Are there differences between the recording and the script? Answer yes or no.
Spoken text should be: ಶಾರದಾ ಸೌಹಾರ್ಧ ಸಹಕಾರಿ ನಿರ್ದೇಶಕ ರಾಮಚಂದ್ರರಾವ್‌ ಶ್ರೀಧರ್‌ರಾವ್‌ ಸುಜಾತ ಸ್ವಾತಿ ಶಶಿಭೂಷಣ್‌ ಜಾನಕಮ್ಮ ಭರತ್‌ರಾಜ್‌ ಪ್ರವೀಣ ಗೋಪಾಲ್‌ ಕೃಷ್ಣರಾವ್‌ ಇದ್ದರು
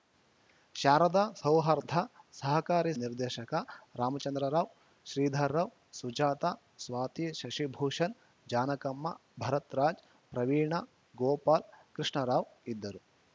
no